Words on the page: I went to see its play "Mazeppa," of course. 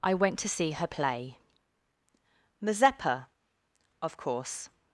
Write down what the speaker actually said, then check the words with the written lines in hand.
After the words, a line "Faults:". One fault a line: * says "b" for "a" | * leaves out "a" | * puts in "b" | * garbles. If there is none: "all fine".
I went to see her play "Mazeppa," of course.
Faults:
* says "her" for "its"